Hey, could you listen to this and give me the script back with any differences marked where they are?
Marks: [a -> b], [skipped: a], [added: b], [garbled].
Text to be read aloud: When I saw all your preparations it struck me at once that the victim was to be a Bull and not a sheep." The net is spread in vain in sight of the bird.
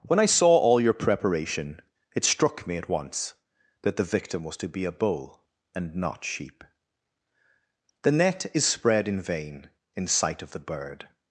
When I saw all your [preparations -> preparation] it struck me at once that the victim was to be a Bull and not [skipped: a] sheep." The net is spread in vain in sight of the bird.